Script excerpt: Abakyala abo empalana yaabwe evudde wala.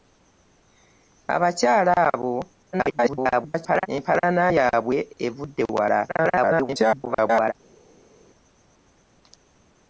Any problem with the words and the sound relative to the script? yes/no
yes